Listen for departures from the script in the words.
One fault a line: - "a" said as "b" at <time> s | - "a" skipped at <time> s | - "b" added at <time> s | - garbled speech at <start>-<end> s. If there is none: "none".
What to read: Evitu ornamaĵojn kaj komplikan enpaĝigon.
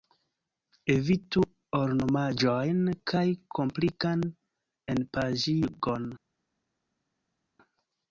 none